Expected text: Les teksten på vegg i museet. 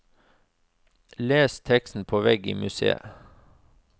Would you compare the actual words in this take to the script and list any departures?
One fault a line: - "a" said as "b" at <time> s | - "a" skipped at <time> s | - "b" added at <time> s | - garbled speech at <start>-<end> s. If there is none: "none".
none